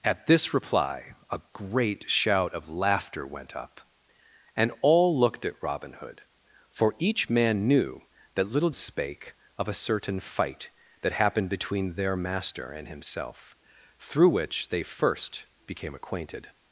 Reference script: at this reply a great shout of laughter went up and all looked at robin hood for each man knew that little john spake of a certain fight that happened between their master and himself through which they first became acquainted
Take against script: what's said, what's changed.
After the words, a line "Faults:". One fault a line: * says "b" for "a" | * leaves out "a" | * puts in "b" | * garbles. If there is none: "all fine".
at this reply a great shout of laughter went up and all looked at robin hood for each man knew that little spake of a certain fight that happened between their master and himself through which they first became acquainted
Faults:
* leaves out "john"